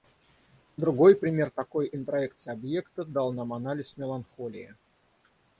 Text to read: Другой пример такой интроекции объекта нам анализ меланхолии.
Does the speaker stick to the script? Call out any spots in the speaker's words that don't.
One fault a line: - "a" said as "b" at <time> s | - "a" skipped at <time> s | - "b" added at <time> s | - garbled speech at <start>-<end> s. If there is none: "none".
- "дал" added at 3.0 s